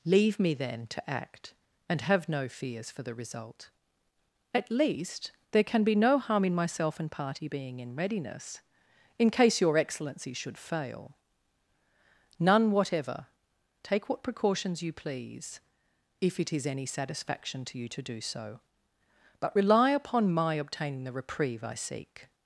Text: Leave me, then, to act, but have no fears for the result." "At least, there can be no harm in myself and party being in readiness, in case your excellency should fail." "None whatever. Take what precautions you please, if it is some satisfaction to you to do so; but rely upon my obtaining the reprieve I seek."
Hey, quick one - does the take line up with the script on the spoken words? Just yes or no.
no